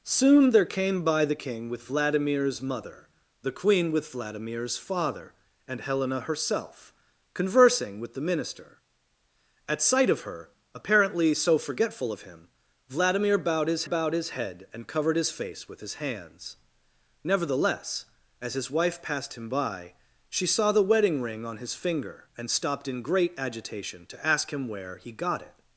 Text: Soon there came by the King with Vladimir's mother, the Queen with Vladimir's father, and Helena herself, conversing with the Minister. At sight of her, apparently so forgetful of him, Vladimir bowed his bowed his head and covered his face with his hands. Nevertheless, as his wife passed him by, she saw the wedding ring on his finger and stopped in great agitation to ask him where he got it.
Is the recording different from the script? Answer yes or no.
no